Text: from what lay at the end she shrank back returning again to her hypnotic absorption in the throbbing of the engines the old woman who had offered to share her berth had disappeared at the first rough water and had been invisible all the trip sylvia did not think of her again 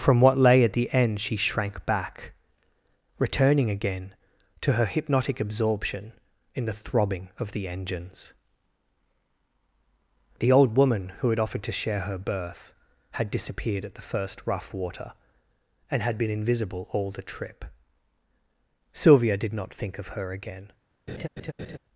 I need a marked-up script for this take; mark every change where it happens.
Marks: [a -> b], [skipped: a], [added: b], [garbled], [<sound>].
from what lay at the end she shrank back returning again to her hypnotic absorption in the throbbing of the engines the old woman who had offered to share her berth had disappeared at the first rough water and had been invisible all the trip sylvia did not think of her again [laugh]